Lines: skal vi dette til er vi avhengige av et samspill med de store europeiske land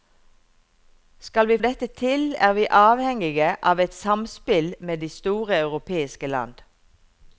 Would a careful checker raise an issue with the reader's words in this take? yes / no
no